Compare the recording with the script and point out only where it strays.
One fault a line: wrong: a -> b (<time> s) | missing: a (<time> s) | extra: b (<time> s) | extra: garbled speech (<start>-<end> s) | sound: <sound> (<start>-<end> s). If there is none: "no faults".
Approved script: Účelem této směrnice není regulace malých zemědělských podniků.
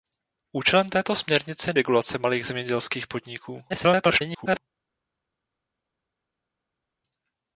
missing: není (1.7 s)
extra: garbled speech (3.7-4.6 s)